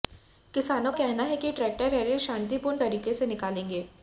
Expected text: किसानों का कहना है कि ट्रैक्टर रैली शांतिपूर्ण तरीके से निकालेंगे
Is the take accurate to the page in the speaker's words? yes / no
no